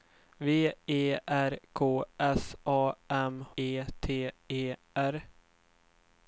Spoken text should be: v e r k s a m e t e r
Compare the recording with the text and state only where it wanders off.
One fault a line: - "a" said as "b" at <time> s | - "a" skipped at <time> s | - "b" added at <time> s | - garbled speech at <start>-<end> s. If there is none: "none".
none